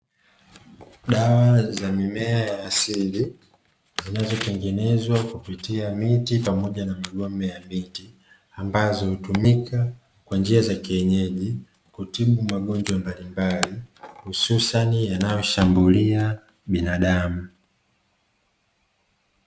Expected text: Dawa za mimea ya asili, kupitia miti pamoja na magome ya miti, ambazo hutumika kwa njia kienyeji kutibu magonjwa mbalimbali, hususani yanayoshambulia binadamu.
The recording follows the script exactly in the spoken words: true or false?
false